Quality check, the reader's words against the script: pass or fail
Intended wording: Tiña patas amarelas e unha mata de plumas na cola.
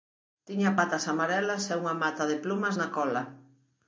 pass